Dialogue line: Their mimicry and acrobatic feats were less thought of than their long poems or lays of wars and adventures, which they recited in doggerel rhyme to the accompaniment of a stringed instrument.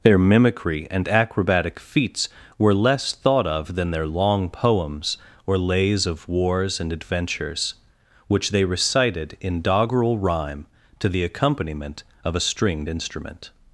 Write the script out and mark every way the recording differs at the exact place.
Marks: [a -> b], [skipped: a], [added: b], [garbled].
Their mimicry and acrobatic feats were less thought of than their long poems or lays of wars and adventures, which they recited in doggerel rhyme to the accompaniment of a stringed instrument.